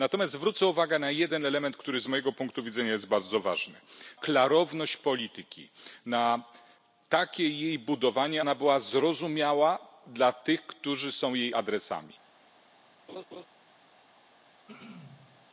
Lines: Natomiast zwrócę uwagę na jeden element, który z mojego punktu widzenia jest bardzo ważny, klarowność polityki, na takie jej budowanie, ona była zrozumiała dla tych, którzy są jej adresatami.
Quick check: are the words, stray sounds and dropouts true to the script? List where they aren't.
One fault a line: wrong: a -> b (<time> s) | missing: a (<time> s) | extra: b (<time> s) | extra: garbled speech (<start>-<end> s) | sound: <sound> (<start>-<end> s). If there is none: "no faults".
sound: laugh (13.1-13.5 s)
sound: throat clearing (14.7-15.5 s)